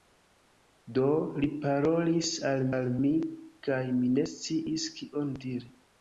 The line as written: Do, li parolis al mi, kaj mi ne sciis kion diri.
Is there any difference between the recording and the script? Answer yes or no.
yes